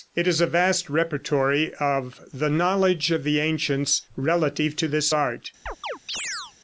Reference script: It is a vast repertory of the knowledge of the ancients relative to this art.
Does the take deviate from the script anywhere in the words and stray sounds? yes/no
yes